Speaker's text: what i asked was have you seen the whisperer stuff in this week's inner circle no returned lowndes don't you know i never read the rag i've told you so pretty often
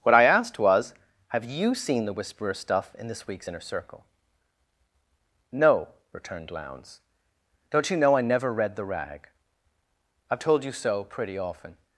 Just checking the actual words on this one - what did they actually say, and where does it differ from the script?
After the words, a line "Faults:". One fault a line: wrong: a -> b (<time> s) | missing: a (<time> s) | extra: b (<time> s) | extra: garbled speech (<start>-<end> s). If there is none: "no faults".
what i asked was have you seen the whisperer stuff in this week's inner circle no returned lowndes don't you know i never read the rag i've told you so pretty often
Faults:
no faults